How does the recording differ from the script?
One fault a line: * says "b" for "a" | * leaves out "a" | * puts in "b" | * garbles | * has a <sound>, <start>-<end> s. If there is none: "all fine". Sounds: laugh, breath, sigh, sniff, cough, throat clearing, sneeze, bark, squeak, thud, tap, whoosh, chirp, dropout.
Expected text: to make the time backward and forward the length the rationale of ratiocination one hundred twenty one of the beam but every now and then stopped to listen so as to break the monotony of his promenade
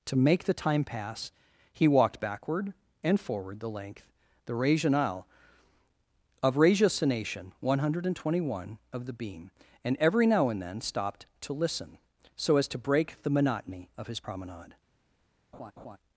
* puts in "pass he walked"
* says "and" for "but"
* has a laugh, 15.5-16.0 s